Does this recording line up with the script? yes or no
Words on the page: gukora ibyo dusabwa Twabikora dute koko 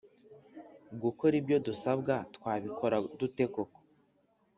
yes